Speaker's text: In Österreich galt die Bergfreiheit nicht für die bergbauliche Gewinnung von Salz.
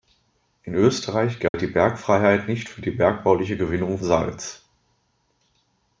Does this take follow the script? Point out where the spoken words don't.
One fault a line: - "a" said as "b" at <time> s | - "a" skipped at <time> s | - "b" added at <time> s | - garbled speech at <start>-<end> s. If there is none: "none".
- "von" skipped at 4.0 s